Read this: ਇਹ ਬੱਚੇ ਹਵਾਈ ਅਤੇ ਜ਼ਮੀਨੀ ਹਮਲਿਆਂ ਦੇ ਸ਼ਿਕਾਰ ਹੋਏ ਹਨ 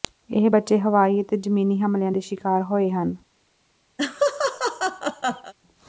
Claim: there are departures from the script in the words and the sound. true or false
true